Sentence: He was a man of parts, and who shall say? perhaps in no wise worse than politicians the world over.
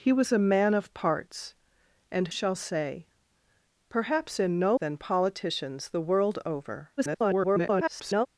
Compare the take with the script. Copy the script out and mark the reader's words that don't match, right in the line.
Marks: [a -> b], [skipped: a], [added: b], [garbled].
He was a man of parts, and [skipped: who] shall say? perhaps in no [skipped: wise worse] than politicians the world over. [garbled]